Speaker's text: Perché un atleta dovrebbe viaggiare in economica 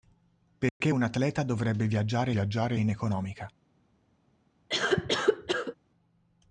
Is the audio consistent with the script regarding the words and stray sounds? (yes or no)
no